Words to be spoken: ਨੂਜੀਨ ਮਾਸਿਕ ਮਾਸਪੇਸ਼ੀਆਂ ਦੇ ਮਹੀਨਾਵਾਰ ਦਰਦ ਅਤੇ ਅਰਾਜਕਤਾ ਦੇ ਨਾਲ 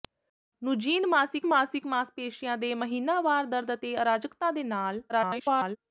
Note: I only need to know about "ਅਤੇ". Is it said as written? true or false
true